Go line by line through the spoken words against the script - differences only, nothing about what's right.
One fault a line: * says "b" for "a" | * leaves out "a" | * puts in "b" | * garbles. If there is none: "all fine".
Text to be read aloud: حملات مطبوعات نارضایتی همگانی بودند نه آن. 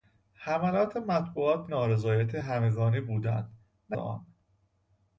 all fine